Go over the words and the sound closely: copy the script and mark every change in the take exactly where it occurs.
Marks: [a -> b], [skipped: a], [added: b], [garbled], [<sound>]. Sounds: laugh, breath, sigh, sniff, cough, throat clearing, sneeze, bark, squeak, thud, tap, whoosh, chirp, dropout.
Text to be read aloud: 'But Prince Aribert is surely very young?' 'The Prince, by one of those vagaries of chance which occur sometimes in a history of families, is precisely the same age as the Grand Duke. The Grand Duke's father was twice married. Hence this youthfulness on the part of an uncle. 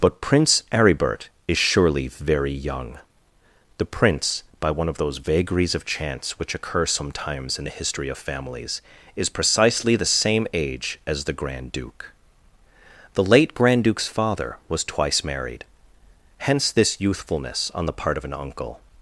'But Prince Aribert is surely very young?' 'The Prince, by one of those vagaries of chance which occur sometimes in [a -> the] history of families, is precisely the same age as the Grand Duke. The [added: late] Grand Duke's father was twice married. Hence this youthfulness on the part of an uncle.